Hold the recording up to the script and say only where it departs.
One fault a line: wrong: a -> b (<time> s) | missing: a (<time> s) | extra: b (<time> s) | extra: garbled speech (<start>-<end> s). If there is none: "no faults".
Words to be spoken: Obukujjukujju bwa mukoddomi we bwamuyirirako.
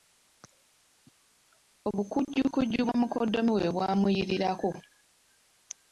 no faults